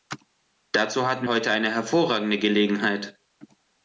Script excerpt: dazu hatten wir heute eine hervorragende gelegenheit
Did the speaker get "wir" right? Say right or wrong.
wrong